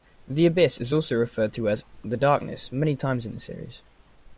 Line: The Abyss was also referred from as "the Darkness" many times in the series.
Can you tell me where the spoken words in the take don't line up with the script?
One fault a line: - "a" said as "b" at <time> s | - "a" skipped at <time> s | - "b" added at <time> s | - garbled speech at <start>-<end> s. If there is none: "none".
- "was" said as "is" at 0.8 s
- "from" said as "to" at 1.5 s